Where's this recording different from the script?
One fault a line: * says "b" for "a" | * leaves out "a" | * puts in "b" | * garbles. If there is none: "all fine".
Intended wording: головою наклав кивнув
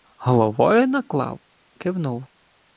all fine